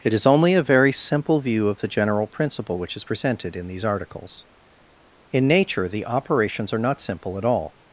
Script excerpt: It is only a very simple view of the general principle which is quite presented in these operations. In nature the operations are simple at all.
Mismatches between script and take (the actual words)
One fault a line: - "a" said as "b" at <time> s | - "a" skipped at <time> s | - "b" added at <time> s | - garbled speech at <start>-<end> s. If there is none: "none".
- "quite" skipped at 3.0 s
- "operations" said as "articles" at 3.8 s
- "not" added at 6.8 s